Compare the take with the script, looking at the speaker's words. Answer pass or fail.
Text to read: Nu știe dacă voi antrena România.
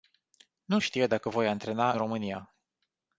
pass